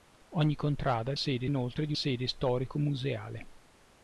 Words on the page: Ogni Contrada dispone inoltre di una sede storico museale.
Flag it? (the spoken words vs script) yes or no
yes